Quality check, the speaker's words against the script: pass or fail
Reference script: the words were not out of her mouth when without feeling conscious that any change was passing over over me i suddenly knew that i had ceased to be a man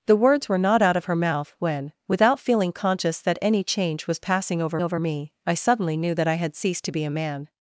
pass